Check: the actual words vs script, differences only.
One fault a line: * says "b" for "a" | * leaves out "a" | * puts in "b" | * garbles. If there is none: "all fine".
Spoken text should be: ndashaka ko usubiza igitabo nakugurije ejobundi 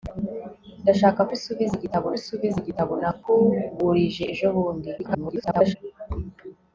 * puts in "usubiza igitabo"
* garbles